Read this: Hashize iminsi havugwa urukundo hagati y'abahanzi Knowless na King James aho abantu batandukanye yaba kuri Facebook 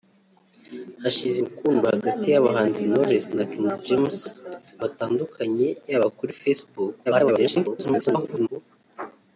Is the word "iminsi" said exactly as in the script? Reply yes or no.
no